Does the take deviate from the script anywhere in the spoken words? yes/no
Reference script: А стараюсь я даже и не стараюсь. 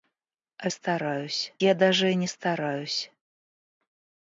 no